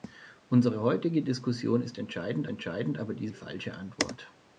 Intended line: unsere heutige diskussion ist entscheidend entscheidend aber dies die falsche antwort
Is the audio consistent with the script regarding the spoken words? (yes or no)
yes